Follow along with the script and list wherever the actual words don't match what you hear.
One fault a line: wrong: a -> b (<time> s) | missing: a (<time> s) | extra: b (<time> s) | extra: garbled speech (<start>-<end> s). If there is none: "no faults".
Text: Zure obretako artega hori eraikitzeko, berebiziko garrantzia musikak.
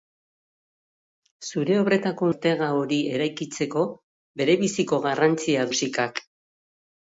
no faults